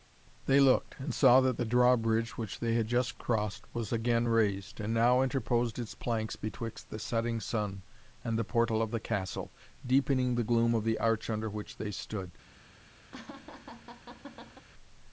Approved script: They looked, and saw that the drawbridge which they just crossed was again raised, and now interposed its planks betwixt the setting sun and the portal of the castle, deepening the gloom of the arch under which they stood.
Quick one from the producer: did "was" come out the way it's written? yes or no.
yes